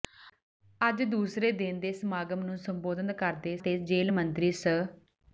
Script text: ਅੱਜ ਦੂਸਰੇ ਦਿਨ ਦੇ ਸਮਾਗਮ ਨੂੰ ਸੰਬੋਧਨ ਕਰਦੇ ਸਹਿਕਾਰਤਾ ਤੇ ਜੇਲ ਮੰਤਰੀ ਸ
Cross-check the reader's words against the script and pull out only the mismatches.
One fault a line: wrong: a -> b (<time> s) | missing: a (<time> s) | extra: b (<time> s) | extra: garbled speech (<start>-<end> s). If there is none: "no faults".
missing: ਸਹਿਕਾਰਤਾ (3.5 s)